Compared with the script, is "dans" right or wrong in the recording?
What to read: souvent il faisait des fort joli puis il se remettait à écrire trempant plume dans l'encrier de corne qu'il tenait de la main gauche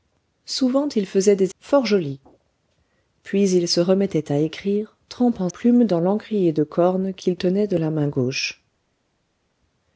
right